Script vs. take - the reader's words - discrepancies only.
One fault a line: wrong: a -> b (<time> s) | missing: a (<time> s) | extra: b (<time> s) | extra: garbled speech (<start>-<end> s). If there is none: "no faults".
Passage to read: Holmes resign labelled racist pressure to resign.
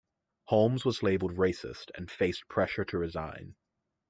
wrong: resign -> was (0.8 s)
extra: and faced (1.9 s)